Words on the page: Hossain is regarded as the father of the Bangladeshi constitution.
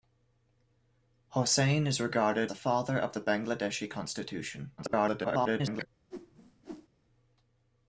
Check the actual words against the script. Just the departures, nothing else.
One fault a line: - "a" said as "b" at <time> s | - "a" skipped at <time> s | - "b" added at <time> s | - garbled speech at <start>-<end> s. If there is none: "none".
- "as" skipped at 2.5 s
- garbled speech at 4.8-5.9 s